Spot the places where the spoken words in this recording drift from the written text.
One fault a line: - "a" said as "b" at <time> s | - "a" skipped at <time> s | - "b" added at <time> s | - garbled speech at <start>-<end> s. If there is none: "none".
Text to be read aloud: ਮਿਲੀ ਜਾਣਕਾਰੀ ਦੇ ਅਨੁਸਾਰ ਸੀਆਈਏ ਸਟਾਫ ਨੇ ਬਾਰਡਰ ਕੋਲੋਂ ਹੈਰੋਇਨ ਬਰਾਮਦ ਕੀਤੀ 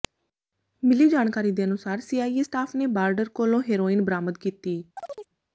none